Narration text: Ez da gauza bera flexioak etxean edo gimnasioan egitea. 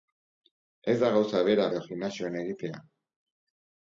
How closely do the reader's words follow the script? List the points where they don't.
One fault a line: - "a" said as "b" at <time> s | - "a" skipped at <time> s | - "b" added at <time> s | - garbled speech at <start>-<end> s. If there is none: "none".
- "flexioak etxean" skipped at 1.7 s